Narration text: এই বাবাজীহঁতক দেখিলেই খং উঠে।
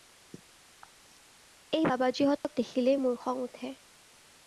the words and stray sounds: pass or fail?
fail